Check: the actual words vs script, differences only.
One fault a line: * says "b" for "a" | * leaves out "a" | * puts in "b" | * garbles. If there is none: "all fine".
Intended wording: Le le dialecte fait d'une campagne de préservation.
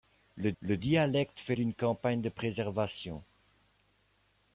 all fine